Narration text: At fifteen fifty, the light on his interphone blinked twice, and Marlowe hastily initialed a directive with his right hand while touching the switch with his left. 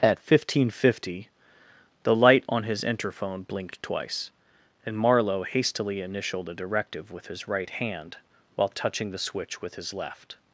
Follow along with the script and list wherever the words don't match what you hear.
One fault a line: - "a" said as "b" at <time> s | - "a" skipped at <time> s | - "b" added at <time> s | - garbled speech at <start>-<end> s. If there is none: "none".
none